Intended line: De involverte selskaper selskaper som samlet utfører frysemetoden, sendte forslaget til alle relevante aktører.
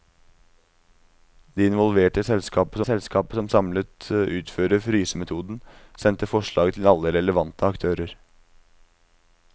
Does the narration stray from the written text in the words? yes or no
no